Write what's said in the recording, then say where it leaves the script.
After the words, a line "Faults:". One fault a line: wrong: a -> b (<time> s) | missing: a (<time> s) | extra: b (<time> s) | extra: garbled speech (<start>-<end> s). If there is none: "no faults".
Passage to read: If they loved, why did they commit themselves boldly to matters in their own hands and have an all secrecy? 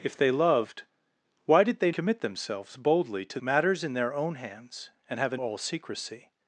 If they loved, why did they commit themselves boldly to matters in their own hands and have an all secrecy?
Faults:
no faults